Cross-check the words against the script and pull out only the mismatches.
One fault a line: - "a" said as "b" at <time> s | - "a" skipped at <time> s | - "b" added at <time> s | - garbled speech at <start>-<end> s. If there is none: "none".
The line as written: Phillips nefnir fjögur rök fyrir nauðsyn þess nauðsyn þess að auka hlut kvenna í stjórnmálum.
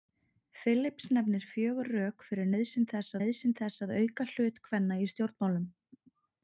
none